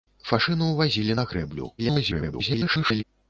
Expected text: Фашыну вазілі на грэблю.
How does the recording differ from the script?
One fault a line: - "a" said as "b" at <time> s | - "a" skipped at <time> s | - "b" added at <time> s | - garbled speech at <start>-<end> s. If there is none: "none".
- garbled speech at 1.8-3.0 s